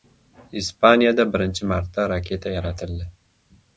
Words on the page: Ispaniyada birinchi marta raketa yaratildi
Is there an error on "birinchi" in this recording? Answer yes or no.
no